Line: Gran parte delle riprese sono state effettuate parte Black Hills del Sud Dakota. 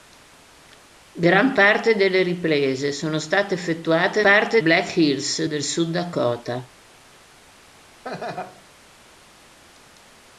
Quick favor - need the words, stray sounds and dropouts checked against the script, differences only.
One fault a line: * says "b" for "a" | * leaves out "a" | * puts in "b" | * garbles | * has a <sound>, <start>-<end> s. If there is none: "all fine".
* has a laugh, 8.0-8.6 s